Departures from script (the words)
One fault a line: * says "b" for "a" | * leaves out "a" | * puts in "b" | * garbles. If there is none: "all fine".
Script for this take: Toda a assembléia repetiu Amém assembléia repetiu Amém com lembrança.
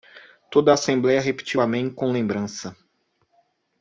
* leaves out "assembléia repetiu Amém"